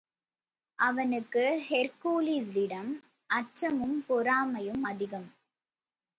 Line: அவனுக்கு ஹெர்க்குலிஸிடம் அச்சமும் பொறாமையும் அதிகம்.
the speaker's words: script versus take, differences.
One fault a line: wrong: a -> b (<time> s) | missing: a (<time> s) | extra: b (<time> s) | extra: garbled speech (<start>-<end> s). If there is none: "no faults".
no faults